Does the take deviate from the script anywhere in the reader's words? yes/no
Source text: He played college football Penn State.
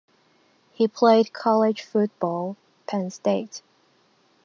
no